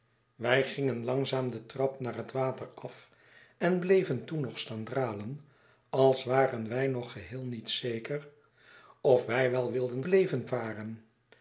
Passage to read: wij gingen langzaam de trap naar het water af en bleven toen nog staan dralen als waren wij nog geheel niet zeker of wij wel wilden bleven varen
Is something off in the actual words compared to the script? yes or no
no